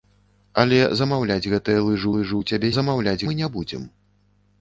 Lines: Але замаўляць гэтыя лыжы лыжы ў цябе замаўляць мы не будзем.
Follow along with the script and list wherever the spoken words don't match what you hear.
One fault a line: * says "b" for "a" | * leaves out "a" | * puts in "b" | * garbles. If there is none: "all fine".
all fine